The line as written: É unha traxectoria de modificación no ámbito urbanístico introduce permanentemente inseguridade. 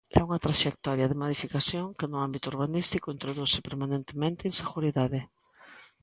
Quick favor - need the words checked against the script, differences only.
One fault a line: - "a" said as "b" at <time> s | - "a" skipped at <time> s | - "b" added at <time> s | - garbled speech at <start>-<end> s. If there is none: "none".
- "que" added at 2.0 s